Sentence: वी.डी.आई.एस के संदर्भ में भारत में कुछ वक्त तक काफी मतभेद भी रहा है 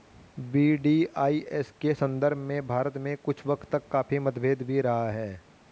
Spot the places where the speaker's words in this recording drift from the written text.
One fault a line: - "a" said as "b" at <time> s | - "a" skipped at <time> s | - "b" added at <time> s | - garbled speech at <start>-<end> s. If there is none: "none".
none